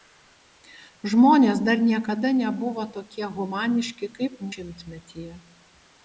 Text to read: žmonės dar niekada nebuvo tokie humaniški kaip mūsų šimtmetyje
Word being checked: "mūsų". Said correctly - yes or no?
no